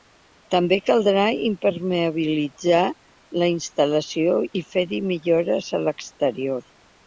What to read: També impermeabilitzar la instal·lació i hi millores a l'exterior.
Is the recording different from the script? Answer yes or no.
yes